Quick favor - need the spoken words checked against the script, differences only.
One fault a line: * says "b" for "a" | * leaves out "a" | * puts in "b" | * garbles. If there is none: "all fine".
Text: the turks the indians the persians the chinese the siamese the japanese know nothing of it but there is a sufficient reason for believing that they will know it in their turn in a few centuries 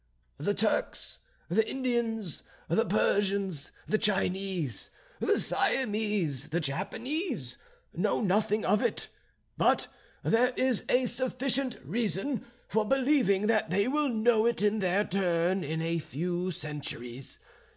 all fine